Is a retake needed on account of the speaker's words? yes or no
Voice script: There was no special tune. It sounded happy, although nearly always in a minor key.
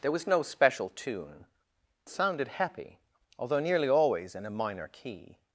yes